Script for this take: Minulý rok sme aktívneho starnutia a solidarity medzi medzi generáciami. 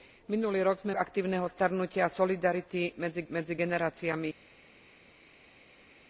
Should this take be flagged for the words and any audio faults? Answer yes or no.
no